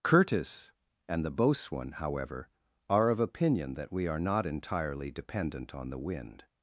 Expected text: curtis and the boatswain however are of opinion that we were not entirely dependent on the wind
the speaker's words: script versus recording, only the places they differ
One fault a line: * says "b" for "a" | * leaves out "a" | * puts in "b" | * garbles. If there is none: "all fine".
* says "are" for "were"